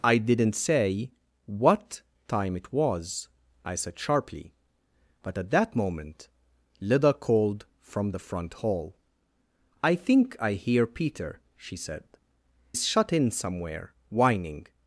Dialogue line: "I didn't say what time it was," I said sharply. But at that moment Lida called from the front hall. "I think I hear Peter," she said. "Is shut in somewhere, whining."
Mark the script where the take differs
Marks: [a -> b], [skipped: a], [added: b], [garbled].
"I didn't say what time it was," I said sharply. But at that moment Lida called from the front hall. "I think I hear Peter," she said. "Is shut in somewhere, whining."